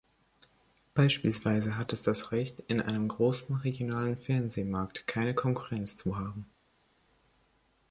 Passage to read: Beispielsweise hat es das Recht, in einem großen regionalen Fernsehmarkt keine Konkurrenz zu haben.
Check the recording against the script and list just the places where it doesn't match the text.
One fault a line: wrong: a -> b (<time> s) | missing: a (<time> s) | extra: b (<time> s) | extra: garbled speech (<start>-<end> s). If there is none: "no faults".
no faults